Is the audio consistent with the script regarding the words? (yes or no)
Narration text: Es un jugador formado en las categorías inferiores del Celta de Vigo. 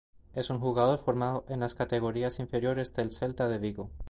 yes